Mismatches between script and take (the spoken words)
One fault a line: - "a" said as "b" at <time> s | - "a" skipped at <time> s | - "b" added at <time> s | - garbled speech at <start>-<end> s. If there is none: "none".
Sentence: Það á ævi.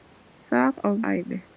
none